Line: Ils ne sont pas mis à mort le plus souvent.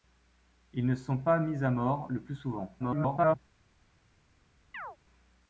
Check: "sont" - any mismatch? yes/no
no